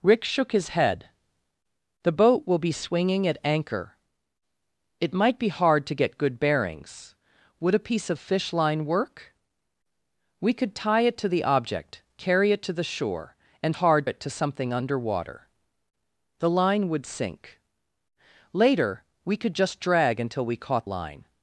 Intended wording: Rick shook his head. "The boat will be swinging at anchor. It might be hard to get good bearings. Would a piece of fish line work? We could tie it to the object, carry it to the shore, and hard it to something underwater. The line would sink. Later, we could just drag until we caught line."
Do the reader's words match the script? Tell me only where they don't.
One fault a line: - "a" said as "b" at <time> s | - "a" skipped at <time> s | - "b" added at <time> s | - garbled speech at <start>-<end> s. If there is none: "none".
none